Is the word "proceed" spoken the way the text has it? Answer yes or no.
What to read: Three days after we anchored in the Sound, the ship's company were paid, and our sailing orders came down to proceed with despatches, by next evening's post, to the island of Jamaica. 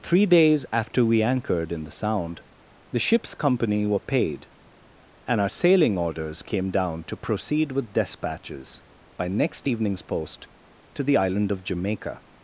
yes